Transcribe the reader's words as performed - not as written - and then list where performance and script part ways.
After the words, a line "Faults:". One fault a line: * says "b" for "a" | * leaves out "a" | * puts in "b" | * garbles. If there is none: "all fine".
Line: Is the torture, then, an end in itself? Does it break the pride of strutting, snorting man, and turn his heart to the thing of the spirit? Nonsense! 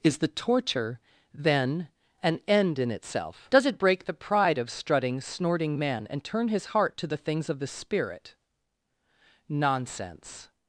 Is the torture, then, an end in itself? Does it break the pride of strutting, snorting man, and turn his heart to the things of the spirit? Nonsense!
Faults:
* says "things" for "thing"